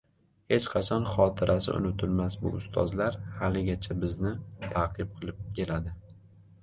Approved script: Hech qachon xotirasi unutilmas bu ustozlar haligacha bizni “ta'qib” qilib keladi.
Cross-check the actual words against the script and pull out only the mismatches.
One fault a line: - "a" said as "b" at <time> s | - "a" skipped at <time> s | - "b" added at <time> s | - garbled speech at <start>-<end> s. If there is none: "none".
none